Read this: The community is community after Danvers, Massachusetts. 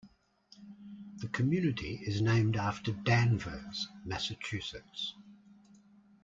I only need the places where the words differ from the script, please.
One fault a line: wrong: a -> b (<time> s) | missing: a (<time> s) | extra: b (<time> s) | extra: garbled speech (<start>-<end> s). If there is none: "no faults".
wrong: community -> named (2.2 s)